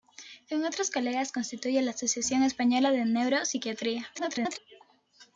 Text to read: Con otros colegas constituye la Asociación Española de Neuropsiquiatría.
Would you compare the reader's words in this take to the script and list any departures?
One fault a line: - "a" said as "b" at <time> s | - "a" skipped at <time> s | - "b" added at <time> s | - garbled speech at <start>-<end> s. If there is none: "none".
- garbled speech at 4.1-4.6 s